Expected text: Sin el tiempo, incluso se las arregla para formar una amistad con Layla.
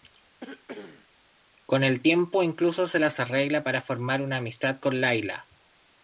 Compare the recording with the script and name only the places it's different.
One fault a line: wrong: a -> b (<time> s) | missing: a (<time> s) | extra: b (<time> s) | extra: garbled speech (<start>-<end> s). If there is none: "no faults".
wrong: Sin -> Con (1.6 s)